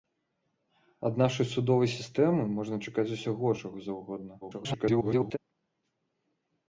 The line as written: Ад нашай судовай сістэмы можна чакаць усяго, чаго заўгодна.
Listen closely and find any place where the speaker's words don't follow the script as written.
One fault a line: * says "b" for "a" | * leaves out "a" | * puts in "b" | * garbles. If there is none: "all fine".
* garbles